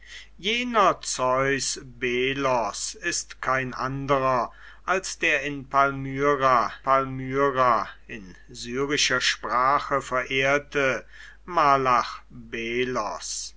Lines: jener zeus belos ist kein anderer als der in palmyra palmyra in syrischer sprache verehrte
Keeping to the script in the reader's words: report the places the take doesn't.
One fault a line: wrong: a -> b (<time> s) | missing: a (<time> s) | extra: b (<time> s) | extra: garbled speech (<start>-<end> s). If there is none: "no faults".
no faults